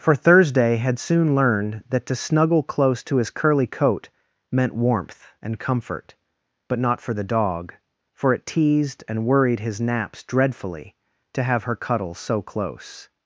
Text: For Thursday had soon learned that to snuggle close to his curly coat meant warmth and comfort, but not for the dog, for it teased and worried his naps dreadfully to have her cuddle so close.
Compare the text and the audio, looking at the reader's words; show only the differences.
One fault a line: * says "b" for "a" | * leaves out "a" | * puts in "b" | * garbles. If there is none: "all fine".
all fine